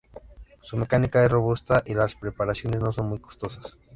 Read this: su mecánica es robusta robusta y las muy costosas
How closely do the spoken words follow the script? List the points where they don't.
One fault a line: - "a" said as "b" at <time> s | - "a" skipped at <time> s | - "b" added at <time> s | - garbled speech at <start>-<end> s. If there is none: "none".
- "robusta" skipped at 1.8 s
- "preparaciones no son" added at 2.2 s